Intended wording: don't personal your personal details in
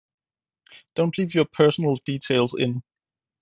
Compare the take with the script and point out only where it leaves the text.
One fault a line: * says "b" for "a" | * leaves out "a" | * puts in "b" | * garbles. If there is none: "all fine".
* says "leave" for "personal"